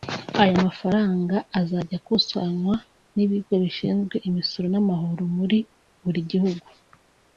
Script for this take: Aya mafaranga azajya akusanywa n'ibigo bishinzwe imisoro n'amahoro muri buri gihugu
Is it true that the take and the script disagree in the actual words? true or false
false